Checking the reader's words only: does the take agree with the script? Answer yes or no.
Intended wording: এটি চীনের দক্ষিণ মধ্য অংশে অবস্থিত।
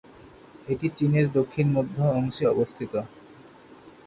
yes